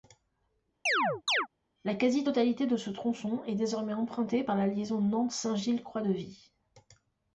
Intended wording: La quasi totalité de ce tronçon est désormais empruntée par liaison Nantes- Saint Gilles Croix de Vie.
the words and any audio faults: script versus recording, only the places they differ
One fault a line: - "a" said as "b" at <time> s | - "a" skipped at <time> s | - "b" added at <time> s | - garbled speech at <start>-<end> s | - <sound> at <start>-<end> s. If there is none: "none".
- chirp at 0.9-1.5 s
- "la" added at 4.5 s